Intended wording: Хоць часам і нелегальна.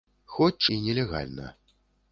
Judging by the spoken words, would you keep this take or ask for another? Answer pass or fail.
fail